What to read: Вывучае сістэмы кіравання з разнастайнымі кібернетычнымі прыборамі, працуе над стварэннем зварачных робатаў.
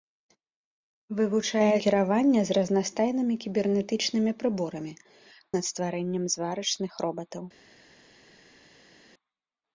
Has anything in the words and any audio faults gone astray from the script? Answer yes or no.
yes